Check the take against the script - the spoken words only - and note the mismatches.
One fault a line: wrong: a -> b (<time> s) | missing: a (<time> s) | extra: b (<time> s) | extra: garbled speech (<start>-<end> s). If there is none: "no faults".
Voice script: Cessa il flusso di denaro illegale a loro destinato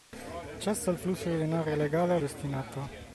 missing: loro (2.2 s)